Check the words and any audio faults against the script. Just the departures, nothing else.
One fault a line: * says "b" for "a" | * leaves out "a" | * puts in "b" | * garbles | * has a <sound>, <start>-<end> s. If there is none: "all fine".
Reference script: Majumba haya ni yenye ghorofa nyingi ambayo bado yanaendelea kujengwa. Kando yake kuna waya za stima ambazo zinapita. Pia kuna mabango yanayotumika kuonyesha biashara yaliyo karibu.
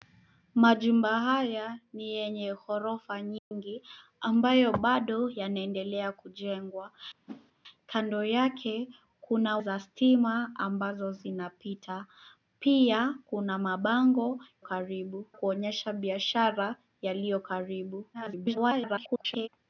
* has a dropout, 3.4-3.5 s
* has a whoosh, 7.3-7.5 s
* leaves out "waya"
* says "karibu" for "yanayotumika"
* garbles